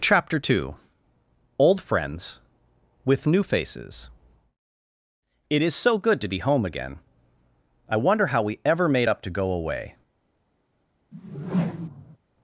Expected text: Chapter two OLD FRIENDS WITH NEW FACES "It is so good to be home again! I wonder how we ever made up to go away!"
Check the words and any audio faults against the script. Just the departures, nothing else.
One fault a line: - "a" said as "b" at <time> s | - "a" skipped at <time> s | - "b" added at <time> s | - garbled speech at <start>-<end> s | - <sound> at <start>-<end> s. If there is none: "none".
- whoosh at 11.1-12.2 s